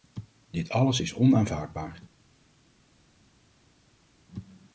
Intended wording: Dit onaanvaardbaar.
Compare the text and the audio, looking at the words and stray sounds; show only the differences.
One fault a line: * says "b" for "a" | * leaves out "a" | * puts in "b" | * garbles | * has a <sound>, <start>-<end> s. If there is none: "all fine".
* puts in "alles is"